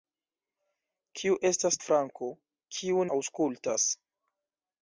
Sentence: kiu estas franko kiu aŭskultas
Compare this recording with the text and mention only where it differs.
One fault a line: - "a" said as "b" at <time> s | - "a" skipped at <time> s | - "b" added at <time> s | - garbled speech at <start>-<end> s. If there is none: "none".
none